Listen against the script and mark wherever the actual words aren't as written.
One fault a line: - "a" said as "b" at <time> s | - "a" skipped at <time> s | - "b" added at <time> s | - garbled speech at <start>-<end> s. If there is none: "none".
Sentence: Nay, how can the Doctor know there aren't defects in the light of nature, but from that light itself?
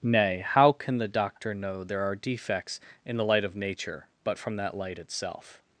- "aren't" said as "are" at 2.0 s